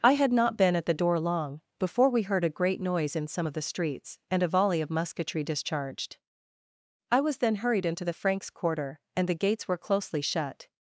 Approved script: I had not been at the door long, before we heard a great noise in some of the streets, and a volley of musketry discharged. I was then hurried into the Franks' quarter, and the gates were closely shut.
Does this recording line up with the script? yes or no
yes